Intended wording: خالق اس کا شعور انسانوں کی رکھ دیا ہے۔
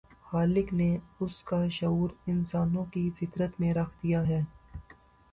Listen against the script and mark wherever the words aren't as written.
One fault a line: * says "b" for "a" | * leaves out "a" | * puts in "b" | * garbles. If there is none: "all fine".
* puts in "نے"
* puts in "فطرت میں"